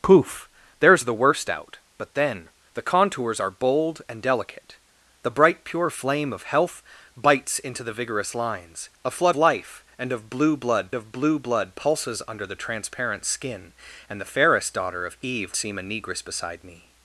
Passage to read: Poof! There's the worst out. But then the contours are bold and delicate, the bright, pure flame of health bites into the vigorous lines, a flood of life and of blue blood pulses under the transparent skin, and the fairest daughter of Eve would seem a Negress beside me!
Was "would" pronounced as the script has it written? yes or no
no